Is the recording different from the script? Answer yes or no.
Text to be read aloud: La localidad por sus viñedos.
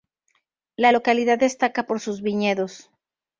yes